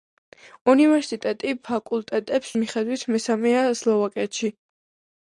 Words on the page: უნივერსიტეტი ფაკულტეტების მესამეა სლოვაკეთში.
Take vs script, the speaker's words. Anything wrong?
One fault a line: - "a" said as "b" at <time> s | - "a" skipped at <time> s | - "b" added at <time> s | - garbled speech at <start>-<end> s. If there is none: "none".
- "მიხედვით" added at 2.6 s